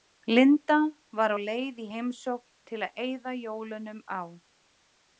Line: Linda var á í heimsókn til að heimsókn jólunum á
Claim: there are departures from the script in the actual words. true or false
true